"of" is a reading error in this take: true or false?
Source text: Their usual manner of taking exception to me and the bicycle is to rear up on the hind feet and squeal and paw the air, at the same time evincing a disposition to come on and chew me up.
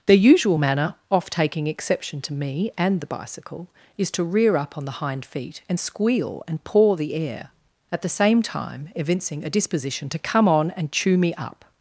true